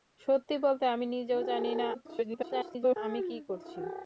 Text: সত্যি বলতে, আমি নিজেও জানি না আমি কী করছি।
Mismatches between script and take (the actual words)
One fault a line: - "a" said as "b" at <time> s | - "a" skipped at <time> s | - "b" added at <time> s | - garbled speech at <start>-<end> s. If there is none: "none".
- garbled speech at 1.9-3.0 s